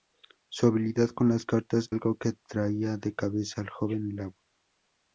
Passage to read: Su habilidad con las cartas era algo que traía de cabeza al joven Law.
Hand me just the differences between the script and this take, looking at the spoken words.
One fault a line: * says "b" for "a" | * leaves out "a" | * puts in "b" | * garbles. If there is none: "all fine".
* leaves out "era"